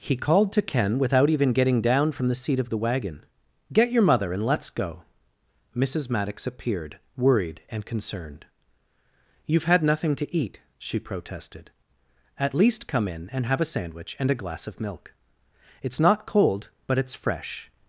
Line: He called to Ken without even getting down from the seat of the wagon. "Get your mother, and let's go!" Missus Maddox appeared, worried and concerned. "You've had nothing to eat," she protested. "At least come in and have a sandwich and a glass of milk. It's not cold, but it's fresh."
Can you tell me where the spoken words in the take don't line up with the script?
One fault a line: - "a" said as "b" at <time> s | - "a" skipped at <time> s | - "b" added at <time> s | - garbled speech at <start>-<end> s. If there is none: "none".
none